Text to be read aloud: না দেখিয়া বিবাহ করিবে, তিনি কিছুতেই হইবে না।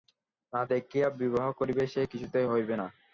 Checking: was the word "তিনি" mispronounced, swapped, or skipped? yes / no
yes